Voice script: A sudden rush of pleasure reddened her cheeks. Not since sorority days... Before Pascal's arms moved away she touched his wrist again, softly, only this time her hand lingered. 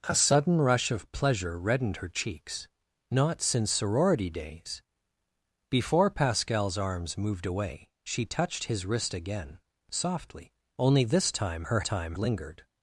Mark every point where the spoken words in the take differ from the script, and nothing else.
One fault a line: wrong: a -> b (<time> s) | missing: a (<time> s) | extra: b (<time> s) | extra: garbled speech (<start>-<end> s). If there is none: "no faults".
wrong: hand -> time (11.8 s)